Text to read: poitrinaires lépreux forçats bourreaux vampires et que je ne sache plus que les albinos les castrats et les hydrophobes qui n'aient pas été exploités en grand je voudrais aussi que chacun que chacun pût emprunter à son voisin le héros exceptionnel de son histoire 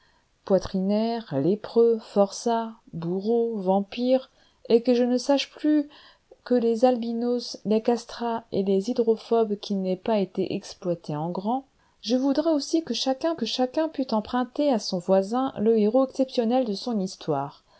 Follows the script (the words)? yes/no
yes